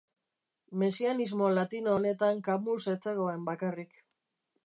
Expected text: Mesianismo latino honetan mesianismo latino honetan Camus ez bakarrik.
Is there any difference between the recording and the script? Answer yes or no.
yes